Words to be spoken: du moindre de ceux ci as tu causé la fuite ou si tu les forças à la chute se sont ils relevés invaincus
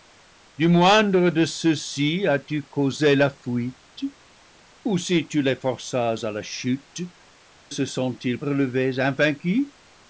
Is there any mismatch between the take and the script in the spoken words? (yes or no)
no